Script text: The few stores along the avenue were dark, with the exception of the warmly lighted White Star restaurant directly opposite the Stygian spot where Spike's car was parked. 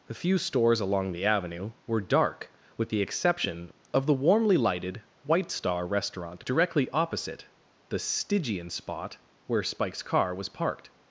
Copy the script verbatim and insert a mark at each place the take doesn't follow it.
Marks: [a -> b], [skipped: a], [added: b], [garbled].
The few stores along the avenue were dark, with the exception of the warmly lighted White Star restaurant directly opposite the Stygian spot where Spike's car was parked.